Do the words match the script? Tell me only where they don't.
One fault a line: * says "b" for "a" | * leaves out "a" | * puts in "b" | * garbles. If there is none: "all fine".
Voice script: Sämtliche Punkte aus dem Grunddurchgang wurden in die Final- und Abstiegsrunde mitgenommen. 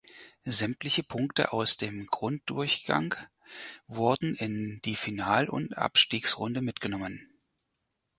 all fine